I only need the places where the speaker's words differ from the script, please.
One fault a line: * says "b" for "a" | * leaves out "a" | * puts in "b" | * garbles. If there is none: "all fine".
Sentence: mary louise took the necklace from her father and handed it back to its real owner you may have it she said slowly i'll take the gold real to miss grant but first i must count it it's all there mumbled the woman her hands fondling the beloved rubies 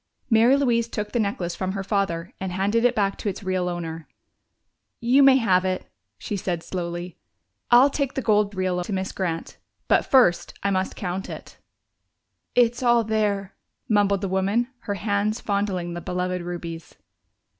all fine